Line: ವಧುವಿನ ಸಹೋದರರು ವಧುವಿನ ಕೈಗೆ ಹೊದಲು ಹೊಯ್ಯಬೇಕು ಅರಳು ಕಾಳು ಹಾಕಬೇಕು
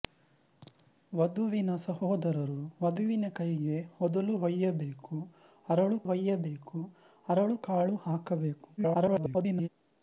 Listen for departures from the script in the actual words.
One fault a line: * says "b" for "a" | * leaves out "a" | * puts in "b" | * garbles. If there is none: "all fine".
* puts in "ಹೊಯ್ಯಬೇಕು ಅರಳು"
* garbles